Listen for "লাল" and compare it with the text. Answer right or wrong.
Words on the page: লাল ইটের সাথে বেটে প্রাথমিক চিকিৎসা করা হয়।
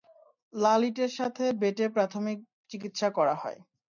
right